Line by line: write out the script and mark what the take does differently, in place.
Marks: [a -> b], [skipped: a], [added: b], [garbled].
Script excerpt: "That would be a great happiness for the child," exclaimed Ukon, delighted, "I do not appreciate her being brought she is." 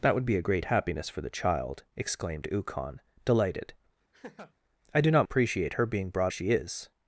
"That would be a great happiness for the child," exclaimed Ukon, delighted, "I do not appreciate her being brought she is."